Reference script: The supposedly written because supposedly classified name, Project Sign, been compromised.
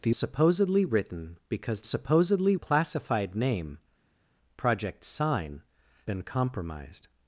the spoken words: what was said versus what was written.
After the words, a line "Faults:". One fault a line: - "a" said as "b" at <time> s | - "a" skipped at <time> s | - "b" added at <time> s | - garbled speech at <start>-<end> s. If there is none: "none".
The supposedly written because supposedly classified name, Project Sign, been compromised.
Faults:
none